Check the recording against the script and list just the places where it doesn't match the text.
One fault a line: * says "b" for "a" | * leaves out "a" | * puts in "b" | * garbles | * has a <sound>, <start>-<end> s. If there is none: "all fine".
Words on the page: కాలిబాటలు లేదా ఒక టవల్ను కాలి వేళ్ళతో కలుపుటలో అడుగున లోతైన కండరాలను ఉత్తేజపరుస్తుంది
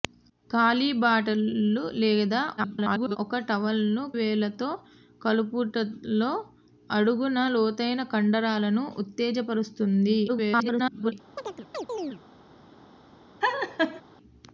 * garbles
* leaves out "కాలి"
* garbles
* has a chirp, 11.4-12.2 s
* has a laugh, 13.4-14.0 s